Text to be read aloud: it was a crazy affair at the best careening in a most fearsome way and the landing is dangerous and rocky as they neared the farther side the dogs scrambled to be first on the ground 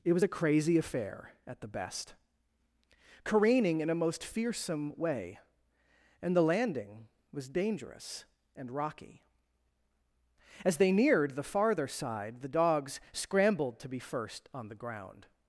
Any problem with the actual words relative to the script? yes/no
yes